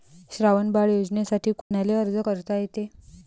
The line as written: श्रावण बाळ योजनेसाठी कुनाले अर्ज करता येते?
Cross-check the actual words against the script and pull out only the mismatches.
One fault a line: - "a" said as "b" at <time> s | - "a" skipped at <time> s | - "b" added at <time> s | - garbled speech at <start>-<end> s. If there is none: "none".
none